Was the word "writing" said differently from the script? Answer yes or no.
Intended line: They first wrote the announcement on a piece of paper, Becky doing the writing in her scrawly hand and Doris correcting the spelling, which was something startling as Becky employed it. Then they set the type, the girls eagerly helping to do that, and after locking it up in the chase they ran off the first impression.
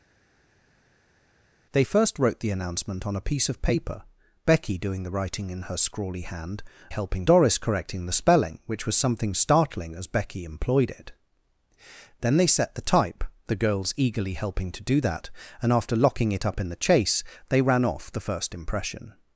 no